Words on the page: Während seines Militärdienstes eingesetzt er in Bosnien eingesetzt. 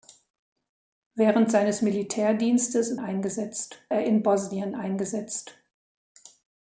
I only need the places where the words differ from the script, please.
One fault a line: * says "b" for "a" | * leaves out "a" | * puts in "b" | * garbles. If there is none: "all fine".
all fine